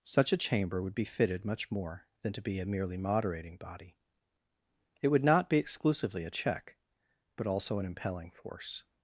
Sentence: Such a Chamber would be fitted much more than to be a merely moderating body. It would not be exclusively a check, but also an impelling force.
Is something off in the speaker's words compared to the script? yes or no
no